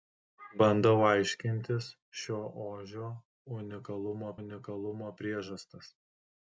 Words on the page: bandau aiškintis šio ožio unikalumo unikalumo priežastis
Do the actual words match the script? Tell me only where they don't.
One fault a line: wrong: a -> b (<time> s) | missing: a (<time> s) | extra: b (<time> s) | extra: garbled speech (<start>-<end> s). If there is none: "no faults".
no faults